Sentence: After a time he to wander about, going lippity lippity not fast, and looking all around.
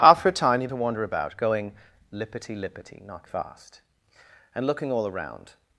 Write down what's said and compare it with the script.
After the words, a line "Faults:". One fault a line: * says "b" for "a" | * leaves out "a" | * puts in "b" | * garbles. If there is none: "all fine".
After a time he to wander about, going lippity lippity not fast, and looking all around.
Faults:
all fine